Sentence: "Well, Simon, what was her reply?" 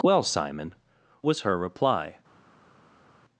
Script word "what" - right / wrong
wrong